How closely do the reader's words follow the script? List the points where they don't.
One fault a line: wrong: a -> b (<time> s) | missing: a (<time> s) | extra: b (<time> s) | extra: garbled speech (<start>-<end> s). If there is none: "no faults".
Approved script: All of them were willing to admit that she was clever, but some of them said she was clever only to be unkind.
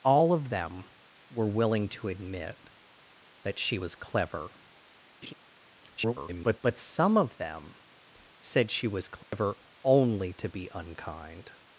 extra: garbled speech (6.0-6.6 s)